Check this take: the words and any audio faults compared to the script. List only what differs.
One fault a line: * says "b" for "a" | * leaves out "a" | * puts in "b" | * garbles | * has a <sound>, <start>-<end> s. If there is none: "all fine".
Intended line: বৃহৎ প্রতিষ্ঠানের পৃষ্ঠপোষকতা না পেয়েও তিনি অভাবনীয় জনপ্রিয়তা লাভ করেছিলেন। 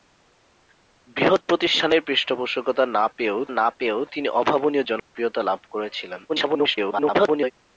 * puts in "না পেয়েও"
* has a dropout, 5.0-5.1 s
* garbles